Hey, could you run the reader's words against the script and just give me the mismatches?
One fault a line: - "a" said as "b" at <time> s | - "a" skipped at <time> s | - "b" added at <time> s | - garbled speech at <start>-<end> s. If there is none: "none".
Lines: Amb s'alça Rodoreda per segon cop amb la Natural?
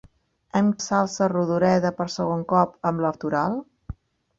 none